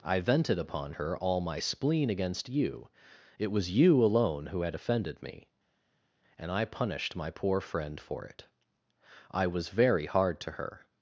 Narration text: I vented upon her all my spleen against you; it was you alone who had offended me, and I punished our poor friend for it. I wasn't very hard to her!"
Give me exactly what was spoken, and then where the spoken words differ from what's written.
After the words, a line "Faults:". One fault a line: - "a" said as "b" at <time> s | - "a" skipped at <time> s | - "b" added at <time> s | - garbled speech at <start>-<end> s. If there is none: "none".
I vented upon her all my spleen against you; it was you alone who had offended me, and I punished my poor friend for it. I was very hard to her!"
Faults:
- "our" said as "my" at 7.1 s
- "wasn't" said as "was" at 9.5 s